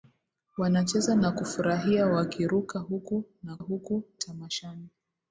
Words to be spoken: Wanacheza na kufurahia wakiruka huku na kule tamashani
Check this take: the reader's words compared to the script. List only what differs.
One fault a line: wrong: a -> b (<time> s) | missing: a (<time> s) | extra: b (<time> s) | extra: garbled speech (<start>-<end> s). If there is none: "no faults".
wrong: kule -> huku (3.6 s)